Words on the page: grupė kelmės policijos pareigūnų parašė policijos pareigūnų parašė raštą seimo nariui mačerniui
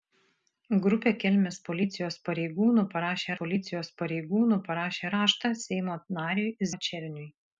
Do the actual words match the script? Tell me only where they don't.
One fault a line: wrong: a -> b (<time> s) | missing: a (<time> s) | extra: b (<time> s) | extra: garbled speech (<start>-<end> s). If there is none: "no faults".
no faults